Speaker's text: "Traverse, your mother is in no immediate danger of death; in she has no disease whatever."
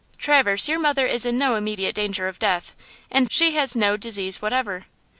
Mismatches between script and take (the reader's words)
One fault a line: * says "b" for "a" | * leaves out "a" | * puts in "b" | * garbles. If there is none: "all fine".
all fine